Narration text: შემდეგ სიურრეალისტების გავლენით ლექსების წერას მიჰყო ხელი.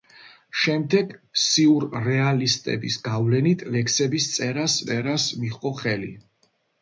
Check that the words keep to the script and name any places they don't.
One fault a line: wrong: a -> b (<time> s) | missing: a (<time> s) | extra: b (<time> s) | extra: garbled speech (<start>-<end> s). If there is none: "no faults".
extra: წერას (4.9 s)